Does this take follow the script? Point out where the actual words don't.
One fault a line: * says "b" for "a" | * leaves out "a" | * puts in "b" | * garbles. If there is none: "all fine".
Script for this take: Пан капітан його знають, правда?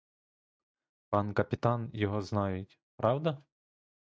all fine